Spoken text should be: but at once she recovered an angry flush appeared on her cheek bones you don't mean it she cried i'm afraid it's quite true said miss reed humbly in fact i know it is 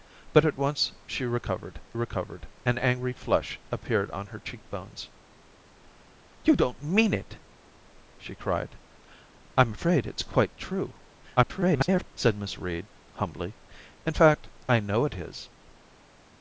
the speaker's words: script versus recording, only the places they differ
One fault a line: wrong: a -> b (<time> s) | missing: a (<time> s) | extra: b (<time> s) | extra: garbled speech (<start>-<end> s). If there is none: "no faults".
extra: recovered (1.9 s)
extra: garbled speech (11.4-12.1 s)